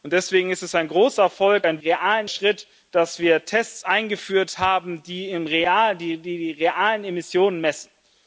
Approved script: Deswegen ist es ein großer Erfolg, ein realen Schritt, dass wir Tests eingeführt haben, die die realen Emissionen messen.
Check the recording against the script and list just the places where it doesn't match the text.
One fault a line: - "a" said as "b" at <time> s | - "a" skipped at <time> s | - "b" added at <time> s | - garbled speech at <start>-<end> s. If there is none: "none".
none